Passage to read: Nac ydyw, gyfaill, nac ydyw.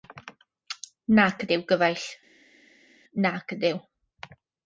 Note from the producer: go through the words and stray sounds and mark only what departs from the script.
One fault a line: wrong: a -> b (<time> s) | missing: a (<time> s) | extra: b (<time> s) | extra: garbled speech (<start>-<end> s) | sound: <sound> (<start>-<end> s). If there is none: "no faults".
no faults